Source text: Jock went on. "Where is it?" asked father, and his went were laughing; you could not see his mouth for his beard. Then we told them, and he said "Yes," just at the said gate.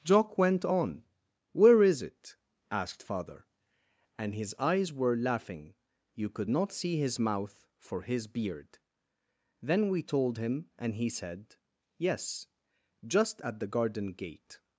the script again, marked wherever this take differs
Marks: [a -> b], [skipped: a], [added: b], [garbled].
Jock went on. "Where is it?" asked father, and his [went -> eyes] were laughing; you could not see his mouth for his beard. Then we told [them, -> him] and he said "Yes," just at the [said -> garden] gate.